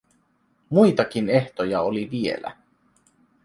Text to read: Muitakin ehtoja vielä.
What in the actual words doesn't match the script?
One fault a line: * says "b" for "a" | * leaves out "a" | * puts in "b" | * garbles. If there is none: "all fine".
* puts in "oli"